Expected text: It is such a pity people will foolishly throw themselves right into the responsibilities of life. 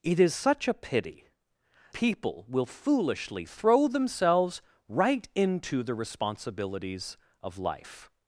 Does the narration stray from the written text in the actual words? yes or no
no